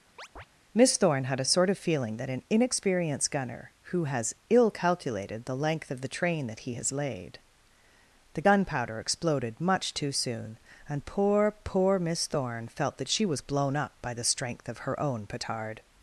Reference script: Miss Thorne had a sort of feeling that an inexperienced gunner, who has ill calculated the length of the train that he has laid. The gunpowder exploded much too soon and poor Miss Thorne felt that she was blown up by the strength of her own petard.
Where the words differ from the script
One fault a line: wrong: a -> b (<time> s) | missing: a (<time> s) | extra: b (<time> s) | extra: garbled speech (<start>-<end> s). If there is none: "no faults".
extra: poor (11.6 s)